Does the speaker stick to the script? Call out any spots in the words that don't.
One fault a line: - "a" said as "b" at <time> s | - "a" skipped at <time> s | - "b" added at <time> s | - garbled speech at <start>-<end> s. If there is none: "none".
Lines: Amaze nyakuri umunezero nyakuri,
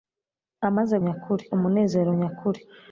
none